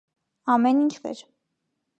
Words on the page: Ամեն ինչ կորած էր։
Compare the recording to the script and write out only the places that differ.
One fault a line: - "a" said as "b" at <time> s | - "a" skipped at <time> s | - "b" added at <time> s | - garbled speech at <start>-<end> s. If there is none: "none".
- "կորած" skipped at 0.9 s